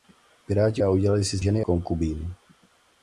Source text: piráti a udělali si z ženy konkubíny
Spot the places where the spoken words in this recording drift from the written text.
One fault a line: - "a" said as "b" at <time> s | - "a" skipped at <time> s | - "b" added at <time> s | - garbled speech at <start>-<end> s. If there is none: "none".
none